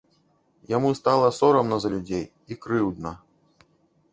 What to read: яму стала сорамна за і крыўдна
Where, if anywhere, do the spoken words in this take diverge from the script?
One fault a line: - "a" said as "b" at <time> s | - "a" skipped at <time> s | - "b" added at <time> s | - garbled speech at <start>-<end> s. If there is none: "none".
- "людзей" added at 2.0 s